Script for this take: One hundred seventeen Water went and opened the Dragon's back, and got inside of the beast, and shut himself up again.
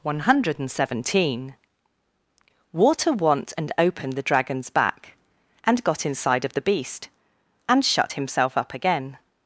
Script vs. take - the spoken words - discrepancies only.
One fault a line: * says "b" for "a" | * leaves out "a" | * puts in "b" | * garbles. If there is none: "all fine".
* says "want" for "went"